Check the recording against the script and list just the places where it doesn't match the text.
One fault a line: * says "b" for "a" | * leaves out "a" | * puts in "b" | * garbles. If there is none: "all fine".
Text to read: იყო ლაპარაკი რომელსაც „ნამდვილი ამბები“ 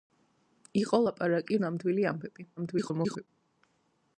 * leaves out "რომელსაც"
* garbles